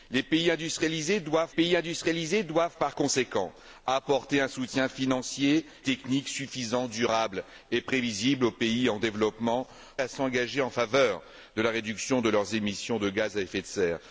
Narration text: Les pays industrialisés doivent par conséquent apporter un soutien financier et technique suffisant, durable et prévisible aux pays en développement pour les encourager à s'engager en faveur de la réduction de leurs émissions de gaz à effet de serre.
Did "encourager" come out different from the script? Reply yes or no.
yes